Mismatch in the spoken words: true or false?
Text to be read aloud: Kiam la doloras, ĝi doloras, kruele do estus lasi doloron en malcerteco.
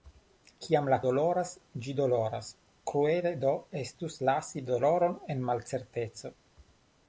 false